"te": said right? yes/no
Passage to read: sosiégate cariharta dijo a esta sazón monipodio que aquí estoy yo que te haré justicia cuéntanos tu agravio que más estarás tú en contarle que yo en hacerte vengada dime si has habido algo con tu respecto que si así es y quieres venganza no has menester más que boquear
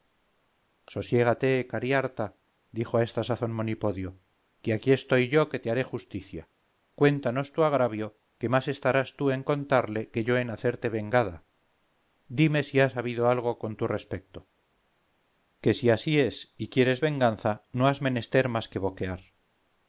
yes